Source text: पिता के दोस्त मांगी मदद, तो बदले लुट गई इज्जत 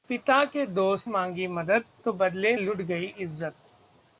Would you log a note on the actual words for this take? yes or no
no